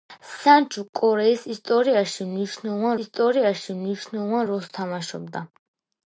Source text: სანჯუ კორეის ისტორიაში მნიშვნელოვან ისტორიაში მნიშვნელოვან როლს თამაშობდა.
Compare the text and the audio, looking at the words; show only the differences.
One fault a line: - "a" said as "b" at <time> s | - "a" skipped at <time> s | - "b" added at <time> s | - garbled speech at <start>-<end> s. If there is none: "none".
none